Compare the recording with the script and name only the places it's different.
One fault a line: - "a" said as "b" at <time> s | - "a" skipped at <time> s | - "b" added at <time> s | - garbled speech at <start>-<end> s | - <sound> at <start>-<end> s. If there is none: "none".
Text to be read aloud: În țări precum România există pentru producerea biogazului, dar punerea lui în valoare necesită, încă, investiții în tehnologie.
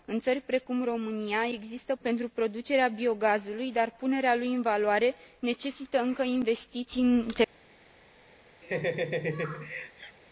- laugh at 8.6-10.2 s